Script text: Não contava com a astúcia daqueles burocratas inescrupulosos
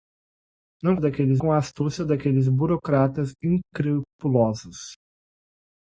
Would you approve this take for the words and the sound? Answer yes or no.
no